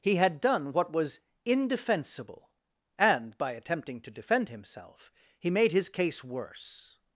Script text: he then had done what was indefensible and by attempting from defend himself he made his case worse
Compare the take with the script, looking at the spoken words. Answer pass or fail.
fail